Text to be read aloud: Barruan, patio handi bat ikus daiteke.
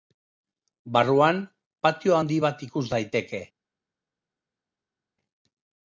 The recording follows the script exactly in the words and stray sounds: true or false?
true